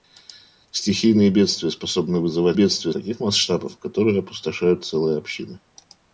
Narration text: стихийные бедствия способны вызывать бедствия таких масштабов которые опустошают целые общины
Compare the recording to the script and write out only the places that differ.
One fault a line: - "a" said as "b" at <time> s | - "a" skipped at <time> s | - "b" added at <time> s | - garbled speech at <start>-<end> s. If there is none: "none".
none